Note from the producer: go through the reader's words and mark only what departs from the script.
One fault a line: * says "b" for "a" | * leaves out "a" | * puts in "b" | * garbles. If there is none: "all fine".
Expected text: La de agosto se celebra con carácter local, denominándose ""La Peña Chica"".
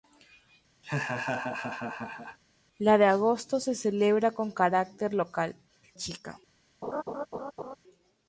* leaves out "denominándose La Peña"